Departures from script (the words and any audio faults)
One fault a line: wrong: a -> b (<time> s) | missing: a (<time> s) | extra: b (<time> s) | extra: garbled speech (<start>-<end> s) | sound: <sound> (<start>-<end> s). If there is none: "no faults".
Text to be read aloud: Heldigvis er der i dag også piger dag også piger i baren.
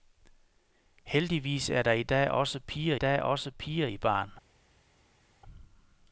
no faults